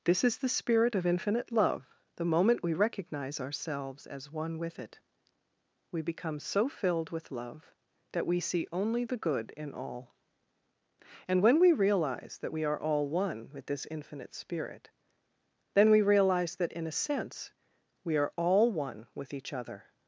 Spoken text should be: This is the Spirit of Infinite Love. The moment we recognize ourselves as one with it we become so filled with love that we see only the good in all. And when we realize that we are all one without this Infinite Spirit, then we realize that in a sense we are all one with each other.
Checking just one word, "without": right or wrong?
wrong